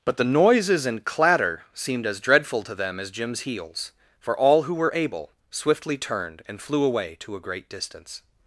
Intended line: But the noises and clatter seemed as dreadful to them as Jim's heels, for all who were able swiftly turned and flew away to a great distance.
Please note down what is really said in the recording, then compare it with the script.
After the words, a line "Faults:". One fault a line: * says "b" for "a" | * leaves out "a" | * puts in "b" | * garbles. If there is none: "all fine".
But the noises and clatter seemed as dreadful to them as Jim's heels, for all who were able swiftly turned and flew away to a great distance.
Faults:
all fine